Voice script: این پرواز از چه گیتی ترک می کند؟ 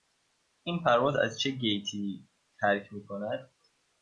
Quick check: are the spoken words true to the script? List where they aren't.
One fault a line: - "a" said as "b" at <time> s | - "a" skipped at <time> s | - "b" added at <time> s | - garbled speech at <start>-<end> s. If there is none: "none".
none